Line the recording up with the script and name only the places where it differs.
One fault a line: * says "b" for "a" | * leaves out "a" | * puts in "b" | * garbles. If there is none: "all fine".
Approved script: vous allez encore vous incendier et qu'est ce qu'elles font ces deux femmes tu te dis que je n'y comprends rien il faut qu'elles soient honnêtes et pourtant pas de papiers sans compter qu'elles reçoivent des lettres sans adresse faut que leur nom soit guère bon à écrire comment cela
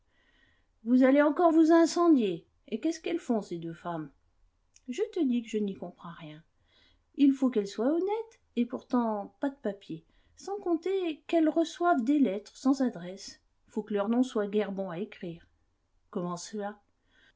* says "je" for "tu"